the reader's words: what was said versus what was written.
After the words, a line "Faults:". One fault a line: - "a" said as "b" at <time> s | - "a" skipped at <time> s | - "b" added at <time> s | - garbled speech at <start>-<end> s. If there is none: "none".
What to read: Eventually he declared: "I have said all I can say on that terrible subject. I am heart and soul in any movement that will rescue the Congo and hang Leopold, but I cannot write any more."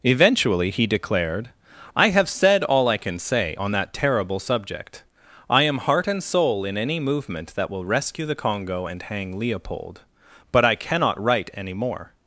Eventually he declared: "I have said all I can say on that terrible subject. I am heart and soul in any movement that will rescue the Congo and hang Leopold, but I cannot write any more."
Faults:
none